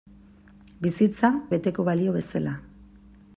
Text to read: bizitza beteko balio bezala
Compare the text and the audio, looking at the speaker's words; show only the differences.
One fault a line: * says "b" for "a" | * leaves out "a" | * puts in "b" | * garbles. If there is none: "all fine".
all fine